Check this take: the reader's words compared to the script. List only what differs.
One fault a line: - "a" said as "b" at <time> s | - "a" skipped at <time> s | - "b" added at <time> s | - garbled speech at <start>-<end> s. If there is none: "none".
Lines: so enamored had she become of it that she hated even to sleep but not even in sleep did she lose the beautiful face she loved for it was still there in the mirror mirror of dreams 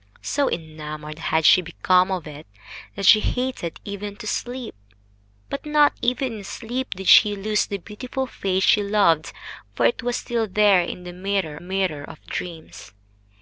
none